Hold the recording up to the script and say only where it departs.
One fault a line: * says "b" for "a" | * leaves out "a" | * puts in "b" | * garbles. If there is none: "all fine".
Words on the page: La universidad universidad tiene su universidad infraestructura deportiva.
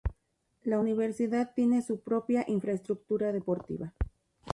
* leaves out "universidad"
* says "propia" for "universidad"